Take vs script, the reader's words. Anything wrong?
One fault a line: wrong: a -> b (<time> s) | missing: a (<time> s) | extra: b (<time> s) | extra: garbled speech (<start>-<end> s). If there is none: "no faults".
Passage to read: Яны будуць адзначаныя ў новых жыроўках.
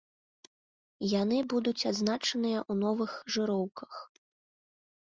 no faults